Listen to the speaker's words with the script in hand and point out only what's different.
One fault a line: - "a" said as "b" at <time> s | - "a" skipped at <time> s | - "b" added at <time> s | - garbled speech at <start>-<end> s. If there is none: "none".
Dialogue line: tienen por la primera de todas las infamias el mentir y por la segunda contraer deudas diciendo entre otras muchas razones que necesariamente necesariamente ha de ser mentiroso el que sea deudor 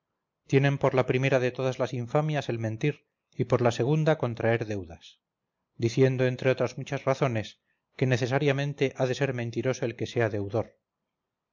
- "necesariamente" skipped at 8.9 s